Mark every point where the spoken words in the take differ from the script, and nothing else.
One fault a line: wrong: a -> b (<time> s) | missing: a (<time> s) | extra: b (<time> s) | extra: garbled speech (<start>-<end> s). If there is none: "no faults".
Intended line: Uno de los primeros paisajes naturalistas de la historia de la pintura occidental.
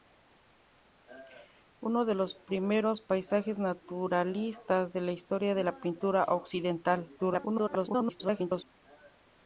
extra: garbled speech (7.2-8.6 s)